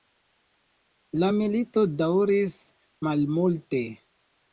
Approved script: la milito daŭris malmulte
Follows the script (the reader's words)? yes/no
yes